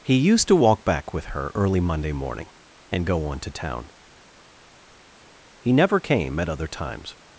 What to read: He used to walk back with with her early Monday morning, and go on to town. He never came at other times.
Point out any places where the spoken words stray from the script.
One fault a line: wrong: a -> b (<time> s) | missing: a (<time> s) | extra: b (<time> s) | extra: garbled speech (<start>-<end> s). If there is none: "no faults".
missing: with (1.2 s)